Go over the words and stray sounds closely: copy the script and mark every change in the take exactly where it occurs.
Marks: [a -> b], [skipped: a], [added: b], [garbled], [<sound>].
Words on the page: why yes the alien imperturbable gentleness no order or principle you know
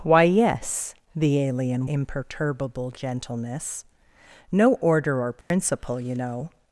why yes the alien imperturbable gentleness no order or principle [dropout] you know